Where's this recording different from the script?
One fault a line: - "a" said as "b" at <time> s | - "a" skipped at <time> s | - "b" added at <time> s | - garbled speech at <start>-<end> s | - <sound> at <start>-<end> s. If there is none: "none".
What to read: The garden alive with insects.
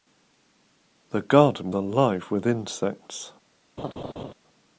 - laugh at 3.8-4.3 s